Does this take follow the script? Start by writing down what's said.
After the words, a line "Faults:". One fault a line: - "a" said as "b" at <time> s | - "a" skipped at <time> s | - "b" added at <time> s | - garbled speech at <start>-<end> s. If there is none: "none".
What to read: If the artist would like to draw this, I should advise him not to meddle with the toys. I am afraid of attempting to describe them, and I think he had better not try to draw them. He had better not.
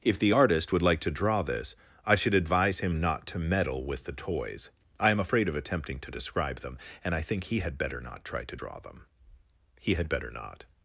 If the artist would like to draw this, I should advise him not to meddle with the toys. I am afraid of attempting to describe them, and I think he had better not try to draw them. He had better not.
Faults:
none